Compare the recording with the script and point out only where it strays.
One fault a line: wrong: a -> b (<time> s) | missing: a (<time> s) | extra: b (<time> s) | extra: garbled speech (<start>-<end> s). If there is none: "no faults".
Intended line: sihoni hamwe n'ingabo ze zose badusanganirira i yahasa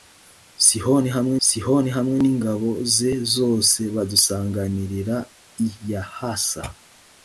extra: sihoni hamwe (1.5 s)